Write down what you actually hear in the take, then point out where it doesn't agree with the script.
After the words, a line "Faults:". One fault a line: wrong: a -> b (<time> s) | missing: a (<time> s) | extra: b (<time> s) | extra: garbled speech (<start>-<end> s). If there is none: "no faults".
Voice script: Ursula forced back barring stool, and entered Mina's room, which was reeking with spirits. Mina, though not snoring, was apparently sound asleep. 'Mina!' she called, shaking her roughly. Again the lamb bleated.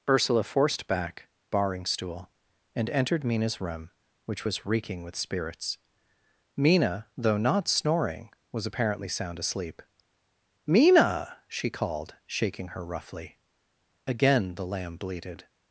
Ursula forced back barring stool, and entered Mina's room, which was reeking with spirits. Mina, though not snoring, was apparently sound asleep. 'Mina!' she called, shaking her roughly. Again the lamb bleated.
Faults:
no faults